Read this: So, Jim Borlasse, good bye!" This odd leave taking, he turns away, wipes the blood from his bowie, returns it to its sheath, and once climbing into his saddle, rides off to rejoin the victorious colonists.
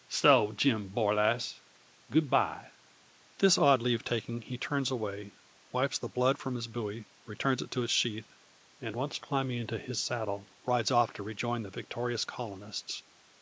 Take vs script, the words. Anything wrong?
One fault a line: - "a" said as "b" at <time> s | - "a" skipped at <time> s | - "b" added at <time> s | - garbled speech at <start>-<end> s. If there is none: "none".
none